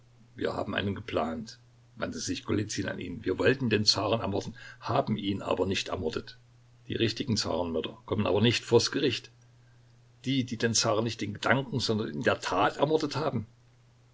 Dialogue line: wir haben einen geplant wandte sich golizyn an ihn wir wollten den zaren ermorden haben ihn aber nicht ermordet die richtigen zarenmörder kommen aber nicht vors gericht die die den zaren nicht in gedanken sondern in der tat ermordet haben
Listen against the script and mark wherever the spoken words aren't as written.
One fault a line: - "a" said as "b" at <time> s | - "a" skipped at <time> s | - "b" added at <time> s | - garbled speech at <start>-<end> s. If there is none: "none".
none